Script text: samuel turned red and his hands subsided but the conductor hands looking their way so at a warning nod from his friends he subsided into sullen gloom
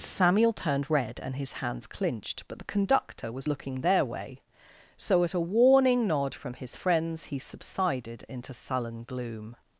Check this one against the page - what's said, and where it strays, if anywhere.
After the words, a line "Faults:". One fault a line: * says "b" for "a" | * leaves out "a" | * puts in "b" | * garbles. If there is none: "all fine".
samuel turned red and his hands clinched but the conductor was looking their way so at a warning nod from his friends he subsided into sullen gloom
Faults:
* says "clinched" for "subsided"
* says "was" for "hands"